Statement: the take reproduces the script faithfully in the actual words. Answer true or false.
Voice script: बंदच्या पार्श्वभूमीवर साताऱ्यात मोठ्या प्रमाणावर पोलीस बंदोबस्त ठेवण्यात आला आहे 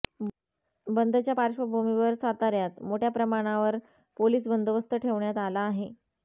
true